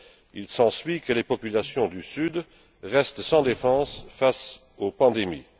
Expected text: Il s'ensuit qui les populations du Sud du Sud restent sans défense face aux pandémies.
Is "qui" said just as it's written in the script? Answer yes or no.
no